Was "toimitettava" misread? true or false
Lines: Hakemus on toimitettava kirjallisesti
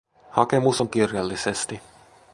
true